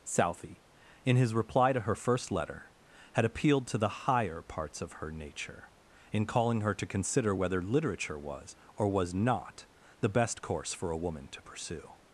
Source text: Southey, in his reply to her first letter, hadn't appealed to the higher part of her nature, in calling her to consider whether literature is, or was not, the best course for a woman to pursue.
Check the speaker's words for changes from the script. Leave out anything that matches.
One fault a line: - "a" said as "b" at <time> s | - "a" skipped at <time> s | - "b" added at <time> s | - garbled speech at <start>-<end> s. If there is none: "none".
- "hadn't" said as "had" at 3.1 s
- "part" said as "parts" at 4.4 s
- "is" said as "was" at 8.2 s